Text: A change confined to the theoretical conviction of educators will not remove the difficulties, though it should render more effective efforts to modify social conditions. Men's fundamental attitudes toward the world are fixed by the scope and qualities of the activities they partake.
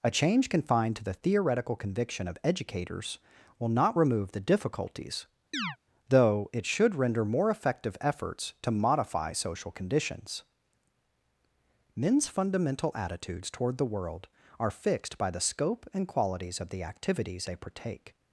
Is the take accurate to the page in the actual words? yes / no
yes